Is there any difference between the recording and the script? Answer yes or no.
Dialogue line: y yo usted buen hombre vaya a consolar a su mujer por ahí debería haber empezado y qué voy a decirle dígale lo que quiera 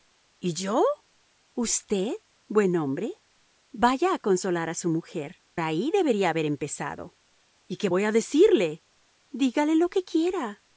yes